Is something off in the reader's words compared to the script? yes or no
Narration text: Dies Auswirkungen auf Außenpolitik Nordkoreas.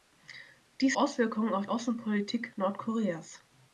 no